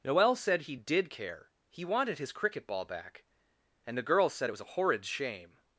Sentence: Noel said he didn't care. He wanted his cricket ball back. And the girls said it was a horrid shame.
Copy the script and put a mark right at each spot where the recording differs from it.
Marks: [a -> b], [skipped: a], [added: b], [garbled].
Noel said he [didn't -> did] care. He wanted his cricket ball back. And the girls said it was a horrid shame.